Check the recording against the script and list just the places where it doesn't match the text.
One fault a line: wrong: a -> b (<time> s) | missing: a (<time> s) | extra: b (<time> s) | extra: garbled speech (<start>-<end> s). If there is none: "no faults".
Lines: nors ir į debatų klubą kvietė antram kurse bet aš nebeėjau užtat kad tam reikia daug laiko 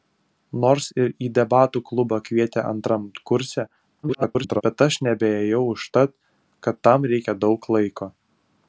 extra: garbled speech (4.0-4.6 s)